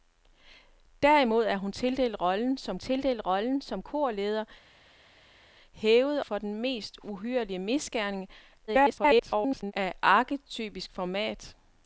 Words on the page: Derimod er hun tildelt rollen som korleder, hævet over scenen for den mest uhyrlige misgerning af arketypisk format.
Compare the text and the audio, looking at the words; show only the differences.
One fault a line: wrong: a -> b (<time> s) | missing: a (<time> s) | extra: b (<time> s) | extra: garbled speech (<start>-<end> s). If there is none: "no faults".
extra: tildelt rollen som (2.8 s)
missing: over scenen (6.2 s)
extra: garbled speech (8.7-9.7 s)